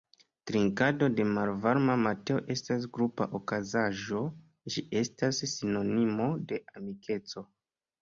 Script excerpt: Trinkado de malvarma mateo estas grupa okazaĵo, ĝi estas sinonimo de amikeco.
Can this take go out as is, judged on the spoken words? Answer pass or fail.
pass